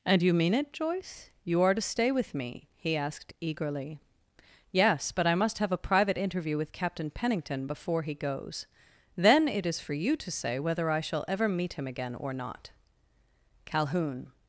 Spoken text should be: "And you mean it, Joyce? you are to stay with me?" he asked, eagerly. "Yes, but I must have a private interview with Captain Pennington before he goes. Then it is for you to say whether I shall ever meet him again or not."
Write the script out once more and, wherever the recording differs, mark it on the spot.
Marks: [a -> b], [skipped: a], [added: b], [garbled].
"And you mean it, Joyce? you are to stay with me?" he asked, eagerly. "Yes, but I must have a private interview with Captain Pennington before he goes. Then it is for you to say whether I shall ever meet him again or not." [added: Calhoun]